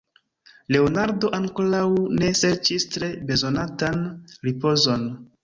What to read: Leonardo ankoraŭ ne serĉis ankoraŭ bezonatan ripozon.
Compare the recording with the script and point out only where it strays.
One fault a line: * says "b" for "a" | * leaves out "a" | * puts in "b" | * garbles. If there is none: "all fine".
* says "tre" for "ankoraŭ"